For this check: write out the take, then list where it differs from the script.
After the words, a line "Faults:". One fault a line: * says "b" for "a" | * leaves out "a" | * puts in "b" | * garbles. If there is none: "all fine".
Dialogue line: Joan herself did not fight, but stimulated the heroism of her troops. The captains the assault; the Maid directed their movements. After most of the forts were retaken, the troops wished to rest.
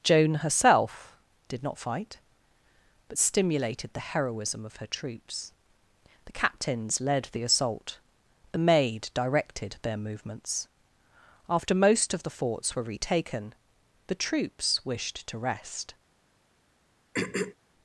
Joan herself did not fight, but stimulated the heroism of her troops. The captains led the assault; the Maid directed their movements. After most of the forts were retaken, the troops wished to rest.
Faults:
* puts in "led"